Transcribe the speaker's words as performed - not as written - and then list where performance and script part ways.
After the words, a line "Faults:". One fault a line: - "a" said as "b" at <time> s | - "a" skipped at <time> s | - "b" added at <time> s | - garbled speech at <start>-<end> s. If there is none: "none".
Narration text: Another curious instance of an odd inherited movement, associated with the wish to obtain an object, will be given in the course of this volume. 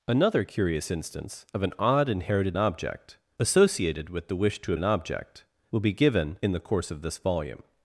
Another curious instance of an odd inherited object, associated with the wish to an object, will be given in the course of this volume.
Faults:
- "movement" said as "object" at 2.6 s
- "obtain" skipped at 4.7 s